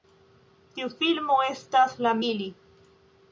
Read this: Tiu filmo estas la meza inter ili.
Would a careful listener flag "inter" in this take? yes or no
yes